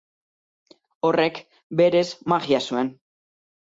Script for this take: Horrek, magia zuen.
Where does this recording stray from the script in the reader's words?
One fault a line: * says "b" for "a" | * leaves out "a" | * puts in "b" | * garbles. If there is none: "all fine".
* puts in "berez"